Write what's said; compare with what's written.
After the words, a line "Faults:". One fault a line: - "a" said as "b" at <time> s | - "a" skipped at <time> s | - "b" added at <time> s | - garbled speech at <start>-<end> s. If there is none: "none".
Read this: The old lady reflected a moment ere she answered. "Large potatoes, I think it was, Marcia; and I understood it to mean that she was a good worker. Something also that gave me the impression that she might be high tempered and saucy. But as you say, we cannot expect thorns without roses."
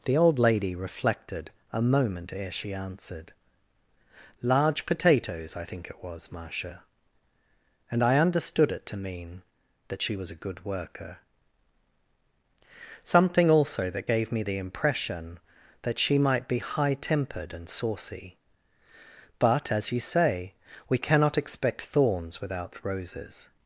The old lady reflected a moment ere she answered. "Large potatoes, I think it was, Marcia; and I understood it to mean that she was a good worker. Something also that gave me the impression that she might be high tempered and saucy. But as you say, we cannot expect thorns without roses."
Faults:
none